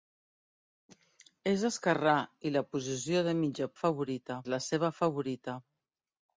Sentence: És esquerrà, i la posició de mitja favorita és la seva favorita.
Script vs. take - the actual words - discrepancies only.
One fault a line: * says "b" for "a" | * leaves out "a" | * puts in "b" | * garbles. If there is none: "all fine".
all fine